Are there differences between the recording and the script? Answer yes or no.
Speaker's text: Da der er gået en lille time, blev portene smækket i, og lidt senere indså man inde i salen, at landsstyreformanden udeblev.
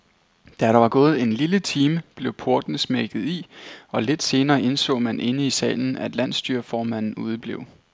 yes